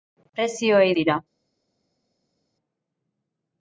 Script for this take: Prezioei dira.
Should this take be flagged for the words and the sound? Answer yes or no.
no